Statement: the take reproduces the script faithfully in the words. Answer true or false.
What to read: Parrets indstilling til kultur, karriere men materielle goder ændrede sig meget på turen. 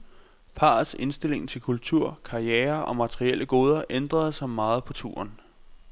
false